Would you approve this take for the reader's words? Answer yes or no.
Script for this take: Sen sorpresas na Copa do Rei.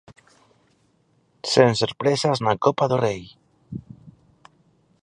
yes